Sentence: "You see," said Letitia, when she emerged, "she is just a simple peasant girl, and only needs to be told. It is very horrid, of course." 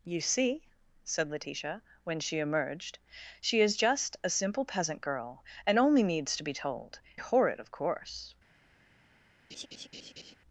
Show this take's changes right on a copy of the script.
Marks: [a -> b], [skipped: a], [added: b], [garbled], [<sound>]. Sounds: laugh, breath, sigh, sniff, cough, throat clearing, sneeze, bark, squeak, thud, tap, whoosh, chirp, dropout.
"You see," said Letitia, when she emerged, "she is just a simple peasant girl, and only needs to be told. [skipped: It is very] horrid, of course." [laugh]